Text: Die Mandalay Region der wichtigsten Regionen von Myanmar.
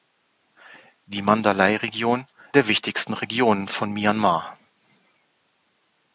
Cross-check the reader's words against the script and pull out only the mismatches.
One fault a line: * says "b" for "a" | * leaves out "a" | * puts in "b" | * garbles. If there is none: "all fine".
all fine